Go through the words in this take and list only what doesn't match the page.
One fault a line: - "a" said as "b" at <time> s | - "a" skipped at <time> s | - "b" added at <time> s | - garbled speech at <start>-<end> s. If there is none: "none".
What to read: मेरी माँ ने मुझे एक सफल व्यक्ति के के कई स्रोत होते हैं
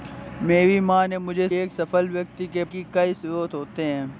none